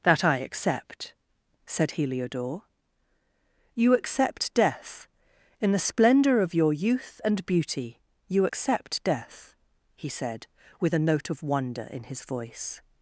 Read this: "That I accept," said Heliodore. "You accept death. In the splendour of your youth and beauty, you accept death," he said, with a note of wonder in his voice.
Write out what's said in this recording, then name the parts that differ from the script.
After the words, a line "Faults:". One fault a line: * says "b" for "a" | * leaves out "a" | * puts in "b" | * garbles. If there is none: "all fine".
"That I accept," said Heliodore. "You accept death. In the splendour of your youth and beauty, you accept death," he said, with a note of wonder in his voice.
Faults:
all fine